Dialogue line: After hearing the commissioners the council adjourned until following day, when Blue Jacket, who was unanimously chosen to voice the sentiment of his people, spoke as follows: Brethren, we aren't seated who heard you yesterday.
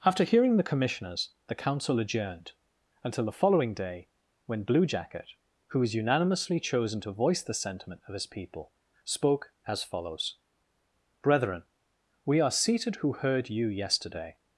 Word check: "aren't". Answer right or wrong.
wrong